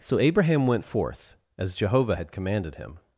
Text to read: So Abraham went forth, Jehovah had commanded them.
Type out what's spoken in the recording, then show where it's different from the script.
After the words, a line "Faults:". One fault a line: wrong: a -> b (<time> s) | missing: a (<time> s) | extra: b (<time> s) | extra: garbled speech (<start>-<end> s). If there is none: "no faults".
So Abraham went forth, as Jehovah had commanded him.
Faults:
extra: as (1.6 s)
wrong: them -> him (2.7 s)